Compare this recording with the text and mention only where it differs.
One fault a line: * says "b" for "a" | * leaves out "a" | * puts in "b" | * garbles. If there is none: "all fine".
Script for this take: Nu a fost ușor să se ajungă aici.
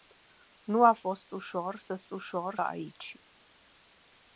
* says "ușor" for "ajungă"